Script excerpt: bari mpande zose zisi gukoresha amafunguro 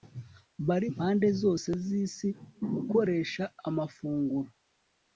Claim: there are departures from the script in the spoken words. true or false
false